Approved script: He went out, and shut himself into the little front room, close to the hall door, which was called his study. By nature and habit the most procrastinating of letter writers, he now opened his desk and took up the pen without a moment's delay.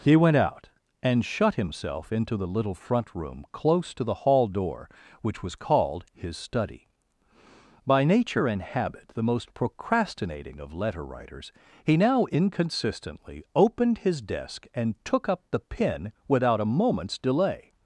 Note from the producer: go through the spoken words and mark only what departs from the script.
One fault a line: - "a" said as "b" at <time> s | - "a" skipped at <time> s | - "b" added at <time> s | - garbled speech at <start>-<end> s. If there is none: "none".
- "inconsistently" added at 12.2 s